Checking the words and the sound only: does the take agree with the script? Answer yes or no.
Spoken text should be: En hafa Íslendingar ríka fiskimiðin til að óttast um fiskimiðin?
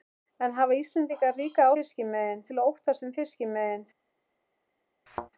no